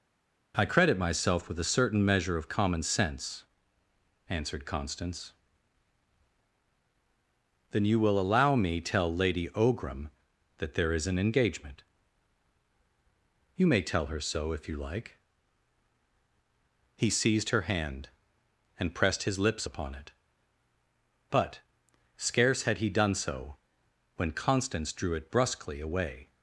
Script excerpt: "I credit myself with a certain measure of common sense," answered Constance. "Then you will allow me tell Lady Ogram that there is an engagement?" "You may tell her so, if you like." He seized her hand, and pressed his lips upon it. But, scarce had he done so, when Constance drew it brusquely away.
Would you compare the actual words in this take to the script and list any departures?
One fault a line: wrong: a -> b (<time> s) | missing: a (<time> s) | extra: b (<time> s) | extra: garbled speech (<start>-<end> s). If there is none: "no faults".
no faults